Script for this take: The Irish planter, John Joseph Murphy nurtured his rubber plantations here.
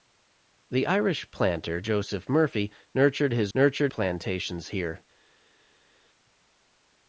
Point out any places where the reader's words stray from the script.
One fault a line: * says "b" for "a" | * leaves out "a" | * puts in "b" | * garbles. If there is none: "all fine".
* leaves out "John"
* says "nurtured" for "rubber"